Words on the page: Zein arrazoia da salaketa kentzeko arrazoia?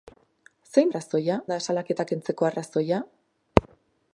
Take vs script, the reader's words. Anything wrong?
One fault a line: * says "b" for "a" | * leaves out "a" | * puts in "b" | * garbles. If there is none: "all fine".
all fine